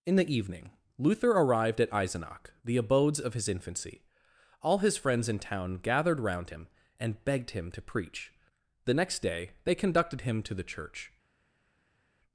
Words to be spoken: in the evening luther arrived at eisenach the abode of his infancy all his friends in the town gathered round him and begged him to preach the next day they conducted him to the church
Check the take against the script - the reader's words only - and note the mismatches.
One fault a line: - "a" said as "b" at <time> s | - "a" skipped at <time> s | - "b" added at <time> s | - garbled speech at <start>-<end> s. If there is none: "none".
- "abode" said as "abodes" at 2.8 s
- "the" skipped at 5.4 s